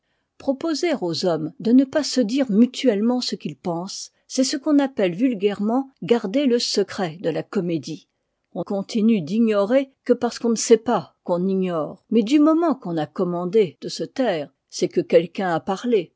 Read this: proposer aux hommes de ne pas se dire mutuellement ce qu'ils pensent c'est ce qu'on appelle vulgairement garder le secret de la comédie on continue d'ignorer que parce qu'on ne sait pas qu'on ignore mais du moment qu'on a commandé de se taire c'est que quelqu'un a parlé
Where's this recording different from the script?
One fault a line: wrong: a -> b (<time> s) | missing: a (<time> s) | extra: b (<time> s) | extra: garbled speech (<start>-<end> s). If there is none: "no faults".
no faults